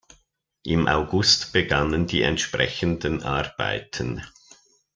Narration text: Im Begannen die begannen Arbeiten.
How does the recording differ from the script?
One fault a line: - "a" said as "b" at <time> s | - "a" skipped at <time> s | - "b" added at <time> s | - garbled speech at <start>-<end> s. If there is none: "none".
- "August" added at 0.8 s
- "begannen" said as "entsprechenden" at 2.2 s